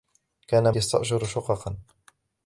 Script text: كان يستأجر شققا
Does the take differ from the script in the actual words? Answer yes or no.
no